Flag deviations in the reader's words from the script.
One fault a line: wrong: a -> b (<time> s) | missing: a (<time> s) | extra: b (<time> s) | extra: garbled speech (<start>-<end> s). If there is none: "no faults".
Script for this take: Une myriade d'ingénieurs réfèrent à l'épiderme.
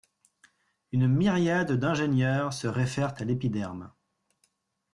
extra: se (2.5 s)